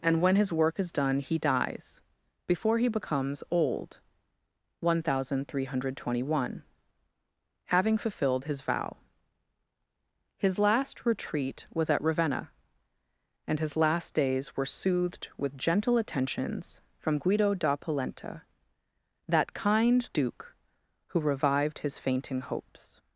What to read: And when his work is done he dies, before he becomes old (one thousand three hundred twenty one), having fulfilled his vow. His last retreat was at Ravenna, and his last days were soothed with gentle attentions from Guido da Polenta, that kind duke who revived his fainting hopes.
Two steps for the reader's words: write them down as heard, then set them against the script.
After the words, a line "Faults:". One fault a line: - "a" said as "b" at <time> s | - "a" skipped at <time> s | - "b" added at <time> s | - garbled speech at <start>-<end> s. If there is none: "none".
And when his work is done he dies, before he becomes old (one thousand three hundred twenty one), having fulfilled his vow. His last retreat was at Ravenna, and his last days were soothed with gentle attentions from Guido da Polenta, that kind duke who revived his fainting hopes.
Faults:
none